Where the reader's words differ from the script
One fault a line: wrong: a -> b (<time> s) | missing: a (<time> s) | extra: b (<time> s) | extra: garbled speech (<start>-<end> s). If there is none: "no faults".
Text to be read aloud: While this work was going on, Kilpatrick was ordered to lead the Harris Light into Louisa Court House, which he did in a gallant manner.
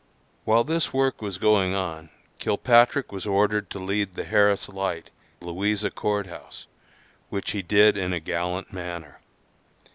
missing: into (5.1 s)